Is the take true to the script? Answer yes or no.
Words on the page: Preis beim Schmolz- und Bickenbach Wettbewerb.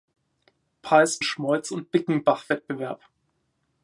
no